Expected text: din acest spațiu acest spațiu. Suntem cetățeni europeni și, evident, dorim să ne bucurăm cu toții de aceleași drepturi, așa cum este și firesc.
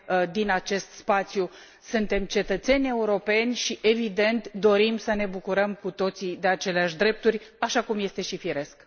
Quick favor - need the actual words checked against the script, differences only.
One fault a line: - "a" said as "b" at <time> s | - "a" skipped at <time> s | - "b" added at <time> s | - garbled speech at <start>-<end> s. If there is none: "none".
- "acest spațiu" skipped at 1.5 s